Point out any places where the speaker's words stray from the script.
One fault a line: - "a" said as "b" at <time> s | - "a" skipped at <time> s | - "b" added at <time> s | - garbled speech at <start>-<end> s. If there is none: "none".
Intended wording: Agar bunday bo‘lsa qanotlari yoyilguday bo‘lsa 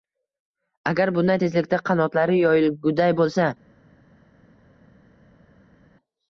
- "bo‘lsa" said as "tezlikda" at 1.4 s